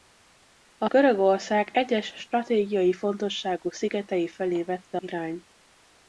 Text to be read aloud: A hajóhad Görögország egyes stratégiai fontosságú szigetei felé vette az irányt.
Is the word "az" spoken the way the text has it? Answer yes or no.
no